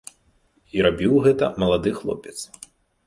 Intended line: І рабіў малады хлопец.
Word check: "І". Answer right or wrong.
right